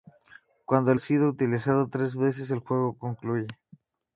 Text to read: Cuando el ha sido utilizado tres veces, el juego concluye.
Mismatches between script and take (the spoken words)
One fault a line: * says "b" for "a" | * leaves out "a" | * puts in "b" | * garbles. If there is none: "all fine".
all fine